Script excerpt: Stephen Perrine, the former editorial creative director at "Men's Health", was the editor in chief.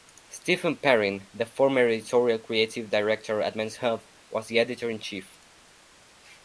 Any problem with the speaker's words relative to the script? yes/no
no